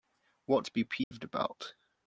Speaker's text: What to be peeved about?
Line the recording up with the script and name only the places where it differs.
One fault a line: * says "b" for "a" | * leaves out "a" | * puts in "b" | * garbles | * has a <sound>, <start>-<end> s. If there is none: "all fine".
* has a dropout, 1.0-1.1 s